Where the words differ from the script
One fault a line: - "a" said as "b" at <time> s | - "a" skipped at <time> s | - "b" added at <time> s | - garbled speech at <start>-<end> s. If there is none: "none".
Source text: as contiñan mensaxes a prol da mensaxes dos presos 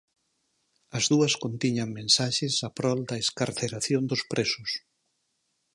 - "dúas" added at 1.1 s
- "mensaxes" said as "excarceración" at 3.2 s